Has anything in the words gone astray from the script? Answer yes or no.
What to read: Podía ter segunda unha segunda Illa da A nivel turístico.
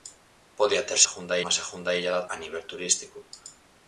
no